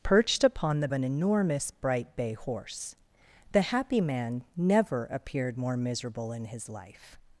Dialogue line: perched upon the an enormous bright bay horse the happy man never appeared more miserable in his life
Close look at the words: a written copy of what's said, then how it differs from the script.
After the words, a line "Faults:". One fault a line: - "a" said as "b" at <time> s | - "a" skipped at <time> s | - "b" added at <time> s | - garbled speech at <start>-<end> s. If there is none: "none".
perched upon the an enormous bright bay horse the happy man never appeared more miserable in his life
Faults:
none